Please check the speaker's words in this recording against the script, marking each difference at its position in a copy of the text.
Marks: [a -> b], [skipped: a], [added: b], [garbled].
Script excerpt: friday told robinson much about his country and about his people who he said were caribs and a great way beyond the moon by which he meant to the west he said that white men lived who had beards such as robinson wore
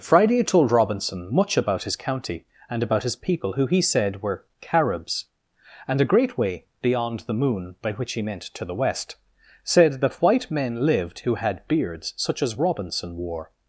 friday told robinson much about his [country -> county] and about his people who he said were caribs and a great way beyond the moon by which he meant to the west [skipped: he] said that white men lived who had beards such as robinson wore